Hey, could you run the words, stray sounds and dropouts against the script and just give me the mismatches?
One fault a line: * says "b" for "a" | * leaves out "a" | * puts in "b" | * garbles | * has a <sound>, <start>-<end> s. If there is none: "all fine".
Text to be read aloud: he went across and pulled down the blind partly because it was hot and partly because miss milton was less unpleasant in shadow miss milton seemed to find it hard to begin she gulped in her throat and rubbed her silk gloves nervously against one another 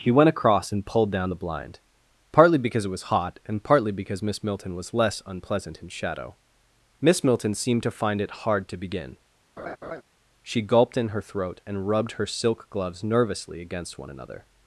* has a laugh, 9.6-10.0 s